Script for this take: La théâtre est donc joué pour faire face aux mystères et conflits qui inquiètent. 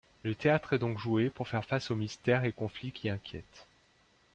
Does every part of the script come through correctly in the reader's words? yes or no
no